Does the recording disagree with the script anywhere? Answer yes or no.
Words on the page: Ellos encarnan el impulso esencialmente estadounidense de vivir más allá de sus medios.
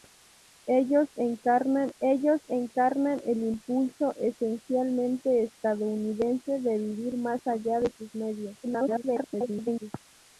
yes